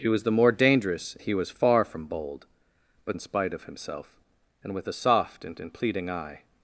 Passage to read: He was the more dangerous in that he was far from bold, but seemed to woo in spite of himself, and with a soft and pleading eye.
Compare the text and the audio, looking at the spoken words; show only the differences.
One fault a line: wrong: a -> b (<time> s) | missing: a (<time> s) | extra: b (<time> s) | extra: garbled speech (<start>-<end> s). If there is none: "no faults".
missing: in that (1.1 s)
missing: seemed to woo (3.2 s)
extra: and (5.6 s)